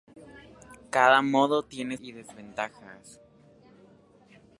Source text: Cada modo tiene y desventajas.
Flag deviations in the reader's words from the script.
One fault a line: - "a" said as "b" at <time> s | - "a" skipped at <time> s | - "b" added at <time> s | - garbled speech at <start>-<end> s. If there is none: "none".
none